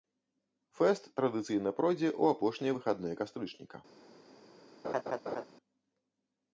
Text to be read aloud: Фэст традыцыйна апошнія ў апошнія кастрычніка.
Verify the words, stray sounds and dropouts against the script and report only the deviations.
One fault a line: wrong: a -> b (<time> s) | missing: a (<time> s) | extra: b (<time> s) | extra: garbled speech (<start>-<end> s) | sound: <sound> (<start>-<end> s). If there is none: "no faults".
wrong: апошнія -> пройдзе (1.8 s)
extra: выхадныя (2.8 s)
sound: laugh (4.8-5.4 s)